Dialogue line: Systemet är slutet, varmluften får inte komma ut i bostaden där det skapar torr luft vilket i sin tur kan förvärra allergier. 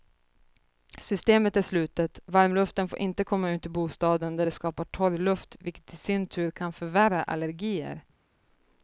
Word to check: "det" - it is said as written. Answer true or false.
true